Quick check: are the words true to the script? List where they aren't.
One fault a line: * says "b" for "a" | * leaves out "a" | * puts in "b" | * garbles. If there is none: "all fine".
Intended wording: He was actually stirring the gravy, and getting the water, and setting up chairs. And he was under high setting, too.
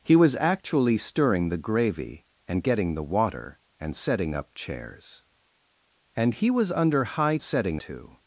all fine